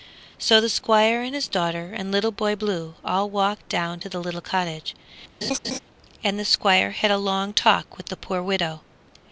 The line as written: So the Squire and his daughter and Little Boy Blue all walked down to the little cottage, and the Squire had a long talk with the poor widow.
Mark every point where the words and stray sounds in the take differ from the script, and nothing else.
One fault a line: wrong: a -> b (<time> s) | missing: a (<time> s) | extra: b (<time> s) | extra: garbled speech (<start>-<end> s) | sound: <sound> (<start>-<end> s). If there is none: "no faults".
sound: laugh (5.4-5.8 s)